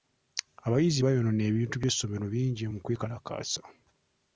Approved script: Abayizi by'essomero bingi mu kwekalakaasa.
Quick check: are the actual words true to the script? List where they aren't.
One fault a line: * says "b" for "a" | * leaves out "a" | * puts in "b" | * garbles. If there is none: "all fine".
* puts in "baayonoona ebintu"